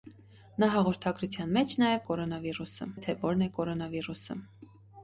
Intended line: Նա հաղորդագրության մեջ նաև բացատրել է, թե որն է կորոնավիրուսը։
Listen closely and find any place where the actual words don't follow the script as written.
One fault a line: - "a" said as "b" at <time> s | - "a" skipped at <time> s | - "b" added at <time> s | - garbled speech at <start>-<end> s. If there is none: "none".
- "բացատրել" said as "կորոնավիրուսը" at 2.1 s